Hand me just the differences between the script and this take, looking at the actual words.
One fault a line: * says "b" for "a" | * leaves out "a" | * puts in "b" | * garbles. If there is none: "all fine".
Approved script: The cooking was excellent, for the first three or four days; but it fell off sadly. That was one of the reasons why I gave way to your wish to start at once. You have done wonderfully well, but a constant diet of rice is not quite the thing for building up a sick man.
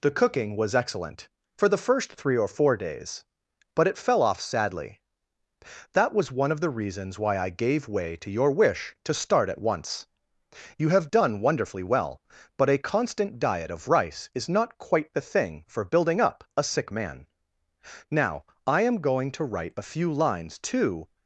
* puts in "Now I am going to write a few lines to"